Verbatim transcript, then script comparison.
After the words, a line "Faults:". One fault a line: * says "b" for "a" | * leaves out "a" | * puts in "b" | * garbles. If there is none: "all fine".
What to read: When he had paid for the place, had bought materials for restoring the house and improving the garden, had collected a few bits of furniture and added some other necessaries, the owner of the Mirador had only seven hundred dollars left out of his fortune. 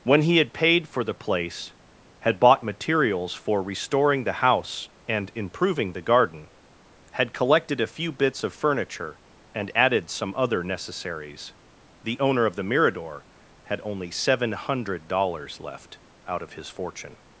When he had paid for the place, had bought materials for restoring the house and improving the garden, had collected a few bits of furniture and added some other necessaries, the owner of the Mirador had only seven hundred dollars left out of his fortune.
Faults:
all fine